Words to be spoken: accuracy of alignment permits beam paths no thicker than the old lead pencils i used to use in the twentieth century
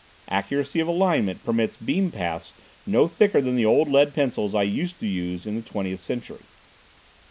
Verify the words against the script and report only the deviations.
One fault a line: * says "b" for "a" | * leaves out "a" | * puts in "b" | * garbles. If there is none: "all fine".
all fine